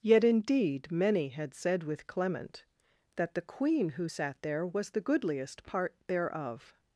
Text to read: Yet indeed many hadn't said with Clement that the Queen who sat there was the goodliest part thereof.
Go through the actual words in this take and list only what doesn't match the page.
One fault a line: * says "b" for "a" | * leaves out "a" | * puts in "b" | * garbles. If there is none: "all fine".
* says "had" for "hadn't"